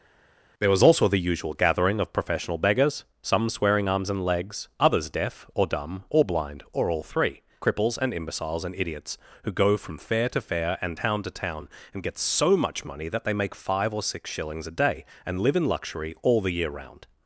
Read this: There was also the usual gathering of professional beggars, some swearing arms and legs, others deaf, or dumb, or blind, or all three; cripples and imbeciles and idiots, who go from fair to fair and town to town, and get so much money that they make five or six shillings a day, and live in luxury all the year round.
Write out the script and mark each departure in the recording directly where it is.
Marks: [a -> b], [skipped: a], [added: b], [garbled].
There was also the usual gathering of professional beggars, some swearing arms and legs, others deaf, or dumb, or blind, or all three; cripples and imbeciles and idiots, who go from fair to fair and town to town, and get so much money that they make five or six shillings a day, and live in luxury all the year round.